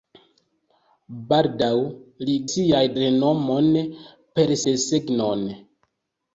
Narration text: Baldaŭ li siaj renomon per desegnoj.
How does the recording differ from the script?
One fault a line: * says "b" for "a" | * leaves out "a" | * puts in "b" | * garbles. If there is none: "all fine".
all fine